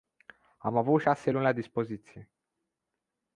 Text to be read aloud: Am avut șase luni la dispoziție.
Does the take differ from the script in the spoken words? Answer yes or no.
no